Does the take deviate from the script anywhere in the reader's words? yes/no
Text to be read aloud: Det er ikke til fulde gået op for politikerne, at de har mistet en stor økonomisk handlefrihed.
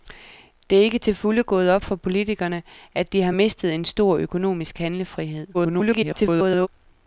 yes